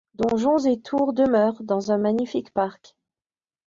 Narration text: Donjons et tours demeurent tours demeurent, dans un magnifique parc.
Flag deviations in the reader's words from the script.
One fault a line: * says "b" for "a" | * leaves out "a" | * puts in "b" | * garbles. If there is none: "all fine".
* leaves out "tours demeurent"